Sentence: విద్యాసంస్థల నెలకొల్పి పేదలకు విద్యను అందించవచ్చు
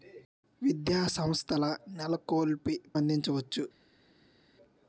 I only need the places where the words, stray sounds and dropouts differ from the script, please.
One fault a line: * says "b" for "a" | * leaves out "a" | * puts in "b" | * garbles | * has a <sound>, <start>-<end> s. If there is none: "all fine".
* leaves out "పేదలకు విద్యను"